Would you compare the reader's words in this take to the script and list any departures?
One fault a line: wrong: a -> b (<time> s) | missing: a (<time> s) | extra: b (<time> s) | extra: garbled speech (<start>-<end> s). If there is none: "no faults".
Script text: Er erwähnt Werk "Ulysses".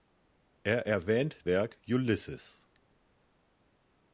no faults